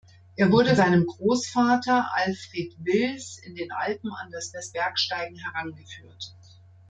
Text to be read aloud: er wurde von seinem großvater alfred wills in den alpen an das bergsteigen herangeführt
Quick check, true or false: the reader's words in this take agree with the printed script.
false